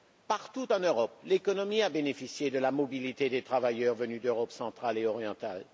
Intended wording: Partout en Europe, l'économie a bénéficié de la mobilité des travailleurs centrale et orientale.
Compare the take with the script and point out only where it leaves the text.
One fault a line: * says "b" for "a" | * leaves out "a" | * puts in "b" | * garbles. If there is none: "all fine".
* puts in "venus d'Europe"